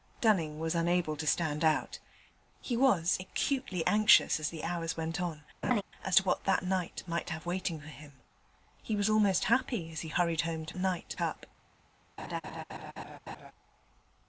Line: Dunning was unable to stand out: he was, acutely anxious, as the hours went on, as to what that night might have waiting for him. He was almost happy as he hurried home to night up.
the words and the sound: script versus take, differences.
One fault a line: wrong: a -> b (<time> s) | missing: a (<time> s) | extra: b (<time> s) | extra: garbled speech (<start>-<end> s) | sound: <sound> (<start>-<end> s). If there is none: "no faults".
sound: laugh (5.6-5.8 s)
sound: laugh (12.2-13.5 s)